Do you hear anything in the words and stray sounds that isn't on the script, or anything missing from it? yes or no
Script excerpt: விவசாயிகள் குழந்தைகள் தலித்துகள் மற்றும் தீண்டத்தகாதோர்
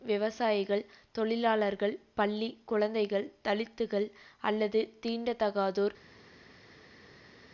yes